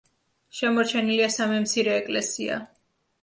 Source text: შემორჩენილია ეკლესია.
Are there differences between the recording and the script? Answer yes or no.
yes